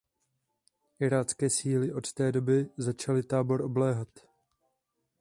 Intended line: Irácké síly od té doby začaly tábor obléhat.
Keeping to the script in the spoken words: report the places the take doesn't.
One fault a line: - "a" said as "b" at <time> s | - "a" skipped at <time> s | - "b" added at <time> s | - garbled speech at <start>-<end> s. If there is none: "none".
none